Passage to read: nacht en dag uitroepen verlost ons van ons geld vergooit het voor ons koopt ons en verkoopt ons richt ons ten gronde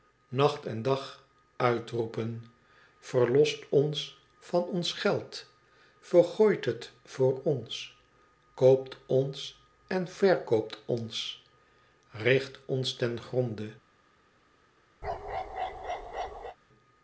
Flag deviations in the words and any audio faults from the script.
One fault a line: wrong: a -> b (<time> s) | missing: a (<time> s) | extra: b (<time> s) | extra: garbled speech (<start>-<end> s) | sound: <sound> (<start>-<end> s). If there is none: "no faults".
sound: bark (15.0-16.6 s)